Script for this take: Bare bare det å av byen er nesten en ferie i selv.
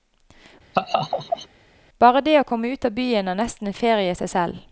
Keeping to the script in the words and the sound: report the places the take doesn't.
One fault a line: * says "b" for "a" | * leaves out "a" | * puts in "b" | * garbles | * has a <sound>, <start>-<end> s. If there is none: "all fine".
* has a laugh, 0.7-1.5 s
* leaves out "bare"
* puts in "komme ut"
* puts in "seg"